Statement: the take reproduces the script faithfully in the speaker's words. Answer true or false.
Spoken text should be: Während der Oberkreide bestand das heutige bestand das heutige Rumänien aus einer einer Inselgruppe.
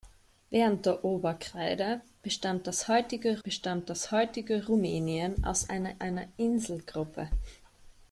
true